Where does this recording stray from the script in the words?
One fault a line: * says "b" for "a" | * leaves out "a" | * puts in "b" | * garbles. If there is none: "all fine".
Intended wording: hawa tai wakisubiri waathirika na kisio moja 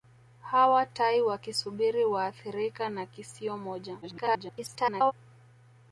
* garbles